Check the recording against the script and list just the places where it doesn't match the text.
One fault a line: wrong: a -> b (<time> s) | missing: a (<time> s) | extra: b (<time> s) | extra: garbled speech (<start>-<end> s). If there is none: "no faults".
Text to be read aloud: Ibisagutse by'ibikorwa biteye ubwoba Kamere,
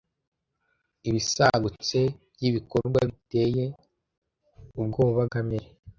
no faults